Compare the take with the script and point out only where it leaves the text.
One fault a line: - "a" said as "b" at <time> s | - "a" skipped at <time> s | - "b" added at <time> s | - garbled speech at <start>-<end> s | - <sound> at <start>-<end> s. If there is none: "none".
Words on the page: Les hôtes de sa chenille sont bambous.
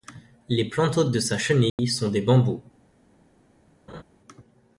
- "plantes" added at 0.7 s
- dropout at 1.7-1.8 s
- "des" added at 2.1 s
- laugh at 3.9-4.0 s